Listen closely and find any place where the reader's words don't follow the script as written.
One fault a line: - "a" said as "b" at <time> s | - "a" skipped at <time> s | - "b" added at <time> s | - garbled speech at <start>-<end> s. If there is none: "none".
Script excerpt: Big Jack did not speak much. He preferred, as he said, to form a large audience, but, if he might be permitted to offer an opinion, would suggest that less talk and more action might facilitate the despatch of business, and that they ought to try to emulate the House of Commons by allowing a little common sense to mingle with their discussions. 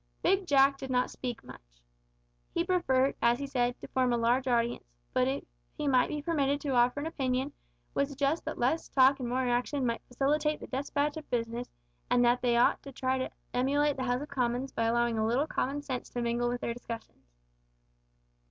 none